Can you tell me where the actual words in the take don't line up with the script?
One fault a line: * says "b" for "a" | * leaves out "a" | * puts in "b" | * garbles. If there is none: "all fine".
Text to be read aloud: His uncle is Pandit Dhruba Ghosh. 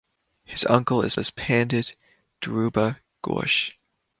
* puts in "is"